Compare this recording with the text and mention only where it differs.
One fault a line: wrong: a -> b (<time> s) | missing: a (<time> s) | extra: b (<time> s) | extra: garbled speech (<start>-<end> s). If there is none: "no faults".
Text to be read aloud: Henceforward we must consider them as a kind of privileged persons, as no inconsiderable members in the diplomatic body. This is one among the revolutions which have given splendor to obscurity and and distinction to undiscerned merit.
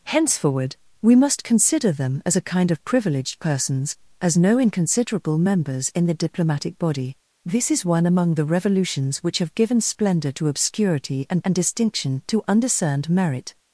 no faults